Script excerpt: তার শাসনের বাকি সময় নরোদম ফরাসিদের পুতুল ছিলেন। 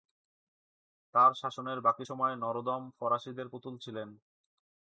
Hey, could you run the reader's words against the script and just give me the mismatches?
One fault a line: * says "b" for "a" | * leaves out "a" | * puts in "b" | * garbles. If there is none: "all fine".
all fine